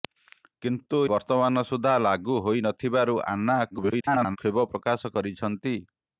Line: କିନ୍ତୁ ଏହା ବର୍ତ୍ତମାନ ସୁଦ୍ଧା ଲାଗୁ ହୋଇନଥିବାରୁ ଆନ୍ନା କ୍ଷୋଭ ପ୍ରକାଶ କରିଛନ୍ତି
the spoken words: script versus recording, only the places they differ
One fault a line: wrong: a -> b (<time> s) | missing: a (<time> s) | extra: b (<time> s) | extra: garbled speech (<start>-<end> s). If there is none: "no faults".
missing: ଏହା (1.0 s)
extra: garbled speech (3.7-4.4 s)